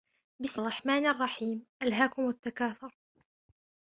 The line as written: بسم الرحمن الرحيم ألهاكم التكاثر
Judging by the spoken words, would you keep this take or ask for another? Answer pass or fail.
pass